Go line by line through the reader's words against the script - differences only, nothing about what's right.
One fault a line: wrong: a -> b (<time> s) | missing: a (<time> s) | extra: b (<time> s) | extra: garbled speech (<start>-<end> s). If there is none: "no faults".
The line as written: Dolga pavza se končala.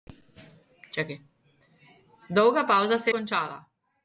no faults